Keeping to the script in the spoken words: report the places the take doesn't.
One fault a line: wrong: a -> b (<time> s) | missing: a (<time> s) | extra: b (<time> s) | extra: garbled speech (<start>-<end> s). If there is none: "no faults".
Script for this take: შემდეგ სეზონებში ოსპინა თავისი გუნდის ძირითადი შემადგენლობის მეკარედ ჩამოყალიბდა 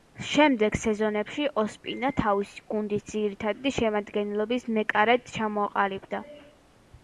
no faults